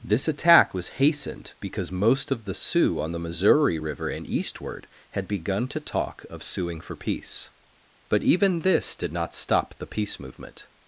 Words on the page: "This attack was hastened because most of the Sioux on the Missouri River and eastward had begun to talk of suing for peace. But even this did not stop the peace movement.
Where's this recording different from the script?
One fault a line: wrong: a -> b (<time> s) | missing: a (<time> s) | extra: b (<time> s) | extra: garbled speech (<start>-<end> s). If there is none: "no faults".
no faults